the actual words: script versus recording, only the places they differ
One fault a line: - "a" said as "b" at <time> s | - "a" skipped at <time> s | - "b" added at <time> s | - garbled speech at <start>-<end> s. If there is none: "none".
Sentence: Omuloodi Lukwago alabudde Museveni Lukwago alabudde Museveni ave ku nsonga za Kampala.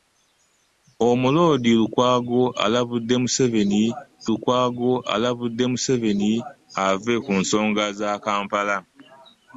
none